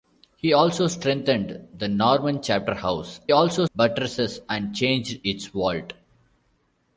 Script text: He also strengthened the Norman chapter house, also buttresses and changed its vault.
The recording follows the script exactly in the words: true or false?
true